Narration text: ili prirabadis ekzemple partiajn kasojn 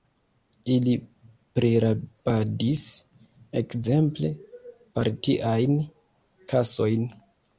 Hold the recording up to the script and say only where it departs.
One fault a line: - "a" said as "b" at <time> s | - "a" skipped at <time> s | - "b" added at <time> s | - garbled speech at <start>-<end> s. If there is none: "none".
none